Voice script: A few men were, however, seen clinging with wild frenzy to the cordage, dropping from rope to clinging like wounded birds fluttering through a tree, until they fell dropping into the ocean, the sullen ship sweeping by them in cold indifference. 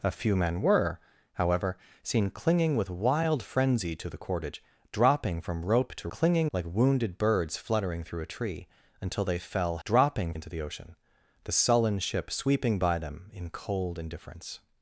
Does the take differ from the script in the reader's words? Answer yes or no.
no